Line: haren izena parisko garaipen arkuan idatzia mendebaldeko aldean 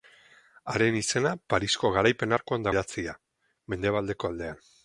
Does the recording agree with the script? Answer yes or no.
yes